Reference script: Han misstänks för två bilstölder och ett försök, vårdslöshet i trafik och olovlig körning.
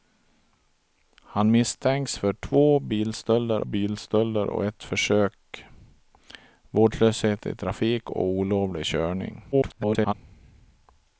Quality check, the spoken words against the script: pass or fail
fail